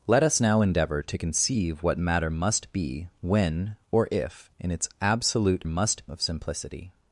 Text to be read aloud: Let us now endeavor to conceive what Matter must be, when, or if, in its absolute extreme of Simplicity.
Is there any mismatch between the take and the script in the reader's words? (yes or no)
yes